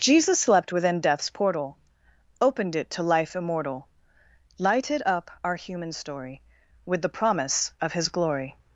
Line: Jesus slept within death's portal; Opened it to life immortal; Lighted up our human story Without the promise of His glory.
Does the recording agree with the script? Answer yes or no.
no